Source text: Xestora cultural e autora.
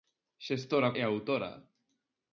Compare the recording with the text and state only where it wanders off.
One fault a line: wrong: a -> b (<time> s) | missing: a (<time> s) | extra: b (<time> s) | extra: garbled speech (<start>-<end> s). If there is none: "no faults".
missing: cultural (0.9 s)